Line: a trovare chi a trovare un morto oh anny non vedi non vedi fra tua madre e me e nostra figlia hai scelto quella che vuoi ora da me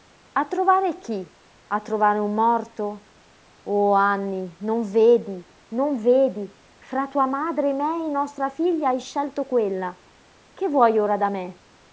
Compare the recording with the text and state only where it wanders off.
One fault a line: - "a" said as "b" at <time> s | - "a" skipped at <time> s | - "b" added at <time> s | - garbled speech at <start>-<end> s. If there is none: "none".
none